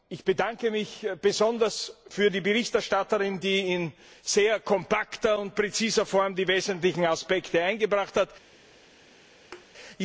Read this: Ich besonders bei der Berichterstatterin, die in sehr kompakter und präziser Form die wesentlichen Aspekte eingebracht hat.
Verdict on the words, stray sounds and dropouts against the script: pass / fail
fail